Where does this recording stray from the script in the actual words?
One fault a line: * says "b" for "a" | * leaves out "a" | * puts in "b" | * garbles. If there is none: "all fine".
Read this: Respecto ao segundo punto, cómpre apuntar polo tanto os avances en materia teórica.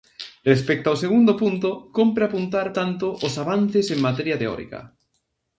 * leaves out "polo"